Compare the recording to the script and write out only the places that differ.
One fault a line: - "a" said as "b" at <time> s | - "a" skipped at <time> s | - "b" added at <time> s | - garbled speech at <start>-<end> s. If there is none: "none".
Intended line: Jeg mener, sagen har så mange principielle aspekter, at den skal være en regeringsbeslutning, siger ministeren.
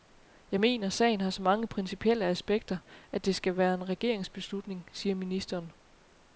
- "den" said as "det" at 3.3 s